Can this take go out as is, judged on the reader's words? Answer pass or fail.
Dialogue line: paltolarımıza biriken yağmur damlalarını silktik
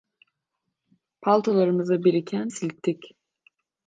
fail